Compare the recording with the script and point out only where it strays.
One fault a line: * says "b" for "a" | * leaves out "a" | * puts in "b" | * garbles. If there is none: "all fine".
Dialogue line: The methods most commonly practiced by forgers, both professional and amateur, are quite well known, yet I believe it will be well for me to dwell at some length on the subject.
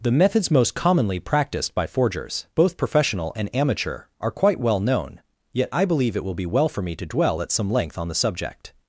all fine